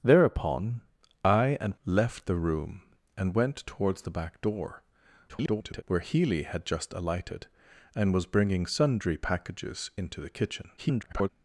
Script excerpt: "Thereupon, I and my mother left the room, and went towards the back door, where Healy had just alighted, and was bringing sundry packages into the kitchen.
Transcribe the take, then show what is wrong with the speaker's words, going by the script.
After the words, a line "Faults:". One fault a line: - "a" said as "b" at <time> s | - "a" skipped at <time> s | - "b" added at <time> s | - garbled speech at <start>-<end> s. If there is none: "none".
"Thereupon, I and left the room, and went towards the back door, [garbled] where Healy had just alighted, and was bringing sundry packages into the kitchen. [garbled]
Faults:
- "my mother" skipped at 1.8 s
- garbled speech at 5.3-5.8 s
- garbled speech at 10.8-11.3 s